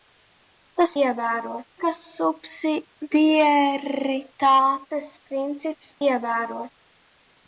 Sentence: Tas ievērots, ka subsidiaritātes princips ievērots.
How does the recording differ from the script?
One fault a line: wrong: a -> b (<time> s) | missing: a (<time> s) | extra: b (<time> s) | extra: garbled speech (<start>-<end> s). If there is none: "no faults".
no faults